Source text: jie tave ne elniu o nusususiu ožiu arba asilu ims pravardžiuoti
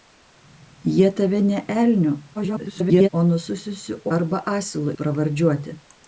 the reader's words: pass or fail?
fail